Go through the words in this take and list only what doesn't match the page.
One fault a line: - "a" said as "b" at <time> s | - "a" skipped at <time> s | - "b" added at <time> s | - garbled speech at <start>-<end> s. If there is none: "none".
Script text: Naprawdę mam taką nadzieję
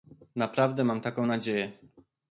none